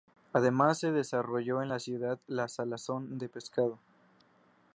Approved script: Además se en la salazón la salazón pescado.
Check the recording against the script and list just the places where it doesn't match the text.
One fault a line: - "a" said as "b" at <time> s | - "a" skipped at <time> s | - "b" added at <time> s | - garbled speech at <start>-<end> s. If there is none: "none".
- "desarrolló" added at 0.9 s
- "salazón" said as "ciudad" at 1.8 s
- "de" added at 3.2 s